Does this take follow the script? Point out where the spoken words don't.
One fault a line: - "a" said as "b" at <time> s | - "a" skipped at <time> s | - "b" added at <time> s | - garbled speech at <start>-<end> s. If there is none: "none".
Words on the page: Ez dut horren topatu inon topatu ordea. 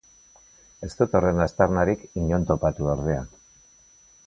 - "topatu" said as "aztarnarik" at 1.4 s